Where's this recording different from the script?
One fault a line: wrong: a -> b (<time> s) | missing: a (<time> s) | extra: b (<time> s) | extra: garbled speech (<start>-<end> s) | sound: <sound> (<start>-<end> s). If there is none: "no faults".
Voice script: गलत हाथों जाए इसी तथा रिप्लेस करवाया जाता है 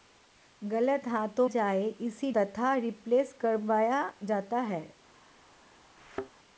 sound: thud (6.0-6.3 s)